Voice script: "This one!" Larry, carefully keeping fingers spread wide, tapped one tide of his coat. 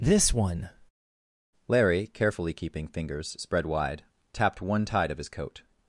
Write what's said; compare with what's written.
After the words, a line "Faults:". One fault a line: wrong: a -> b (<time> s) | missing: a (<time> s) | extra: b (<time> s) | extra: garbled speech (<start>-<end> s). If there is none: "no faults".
"This one!" Larry, carefully keeping fingers spread wide, tapped one tide of his coat.
Faults:
no faults